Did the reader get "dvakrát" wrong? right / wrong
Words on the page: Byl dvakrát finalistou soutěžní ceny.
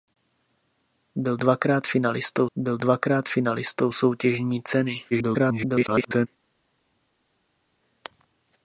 right